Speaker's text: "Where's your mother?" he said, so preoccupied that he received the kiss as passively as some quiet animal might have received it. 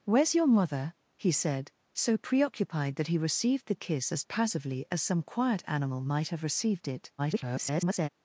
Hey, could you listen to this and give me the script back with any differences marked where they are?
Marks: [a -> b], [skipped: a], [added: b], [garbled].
"Where's your mother?" he said, so preoccupied that he received the kiss as passively as some quiet animal might have received it. [garbled]